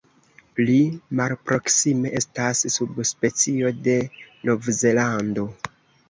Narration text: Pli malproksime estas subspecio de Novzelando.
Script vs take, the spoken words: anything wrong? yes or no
no